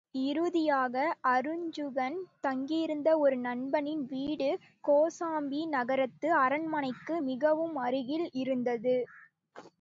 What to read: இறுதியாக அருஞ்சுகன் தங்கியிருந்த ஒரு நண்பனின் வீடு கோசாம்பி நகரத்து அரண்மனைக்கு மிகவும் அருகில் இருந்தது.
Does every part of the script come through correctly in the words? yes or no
yes